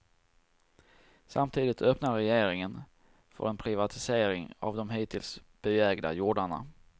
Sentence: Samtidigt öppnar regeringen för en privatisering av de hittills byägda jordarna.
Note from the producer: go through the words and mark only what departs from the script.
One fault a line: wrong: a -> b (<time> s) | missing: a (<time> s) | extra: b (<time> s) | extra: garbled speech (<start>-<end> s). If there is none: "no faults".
no faults